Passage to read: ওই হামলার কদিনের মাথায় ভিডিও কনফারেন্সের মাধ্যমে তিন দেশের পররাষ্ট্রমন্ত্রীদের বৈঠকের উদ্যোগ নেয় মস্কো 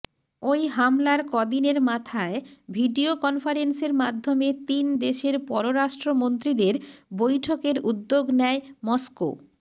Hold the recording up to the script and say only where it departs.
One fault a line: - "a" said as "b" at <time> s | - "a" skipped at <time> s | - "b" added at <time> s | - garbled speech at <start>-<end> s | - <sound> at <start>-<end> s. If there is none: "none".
none